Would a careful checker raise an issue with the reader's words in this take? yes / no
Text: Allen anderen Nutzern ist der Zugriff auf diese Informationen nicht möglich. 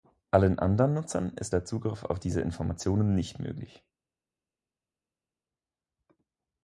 no